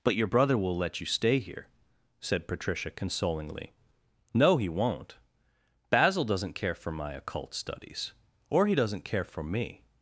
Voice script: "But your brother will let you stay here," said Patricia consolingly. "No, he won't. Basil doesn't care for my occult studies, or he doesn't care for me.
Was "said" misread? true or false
false